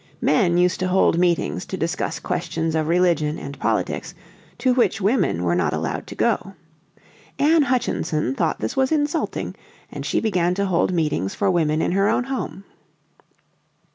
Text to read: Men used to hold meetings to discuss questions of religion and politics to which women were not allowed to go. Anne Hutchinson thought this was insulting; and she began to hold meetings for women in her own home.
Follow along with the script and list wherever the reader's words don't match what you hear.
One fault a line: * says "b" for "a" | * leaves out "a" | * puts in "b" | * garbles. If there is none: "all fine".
all fine